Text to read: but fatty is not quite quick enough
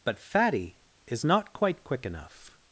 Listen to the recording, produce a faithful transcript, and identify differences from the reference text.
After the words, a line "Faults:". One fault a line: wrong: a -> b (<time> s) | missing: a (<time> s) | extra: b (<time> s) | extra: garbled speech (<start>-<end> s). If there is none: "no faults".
but fatty is not quite quick enough
Faults:
no faults